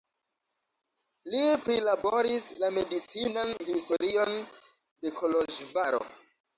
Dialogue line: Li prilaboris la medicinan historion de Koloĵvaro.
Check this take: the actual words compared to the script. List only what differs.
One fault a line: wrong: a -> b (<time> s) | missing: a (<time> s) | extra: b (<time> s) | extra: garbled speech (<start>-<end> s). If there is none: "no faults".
no faults